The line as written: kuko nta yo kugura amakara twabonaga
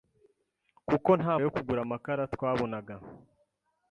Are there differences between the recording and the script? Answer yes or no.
no